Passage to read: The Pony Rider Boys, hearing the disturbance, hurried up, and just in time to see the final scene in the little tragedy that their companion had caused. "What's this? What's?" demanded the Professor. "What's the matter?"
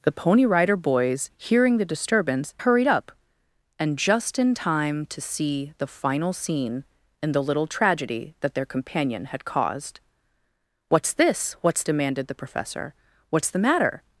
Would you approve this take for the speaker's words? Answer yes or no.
yes